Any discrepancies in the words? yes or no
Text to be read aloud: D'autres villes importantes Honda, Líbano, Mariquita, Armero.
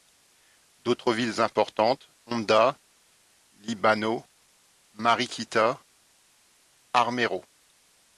no